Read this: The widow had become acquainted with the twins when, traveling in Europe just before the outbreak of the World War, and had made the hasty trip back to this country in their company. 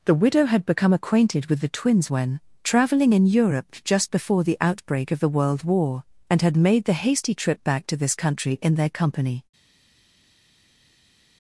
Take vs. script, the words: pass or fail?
pass